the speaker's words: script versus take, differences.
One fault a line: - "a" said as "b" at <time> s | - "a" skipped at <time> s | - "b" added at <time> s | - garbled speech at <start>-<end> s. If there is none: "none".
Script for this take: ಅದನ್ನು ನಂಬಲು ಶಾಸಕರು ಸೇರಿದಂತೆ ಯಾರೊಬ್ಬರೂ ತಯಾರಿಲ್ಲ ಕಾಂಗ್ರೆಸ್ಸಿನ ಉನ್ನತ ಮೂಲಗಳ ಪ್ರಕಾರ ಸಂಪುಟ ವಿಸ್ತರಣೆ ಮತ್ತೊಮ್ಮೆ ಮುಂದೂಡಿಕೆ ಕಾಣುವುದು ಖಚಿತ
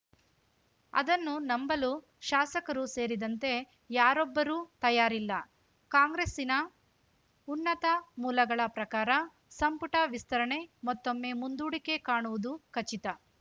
none